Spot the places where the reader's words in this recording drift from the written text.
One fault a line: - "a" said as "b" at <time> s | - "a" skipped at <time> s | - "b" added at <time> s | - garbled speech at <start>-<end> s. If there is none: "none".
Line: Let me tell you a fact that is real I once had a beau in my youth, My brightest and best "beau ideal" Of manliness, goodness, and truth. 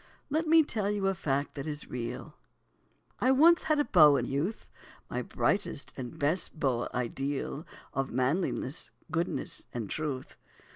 - "my" skipped at 4.3 s